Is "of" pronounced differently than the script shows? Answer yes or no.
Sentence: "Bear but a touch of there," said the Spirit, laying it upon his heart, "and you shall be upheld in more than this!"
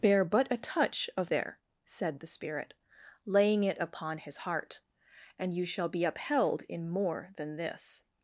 no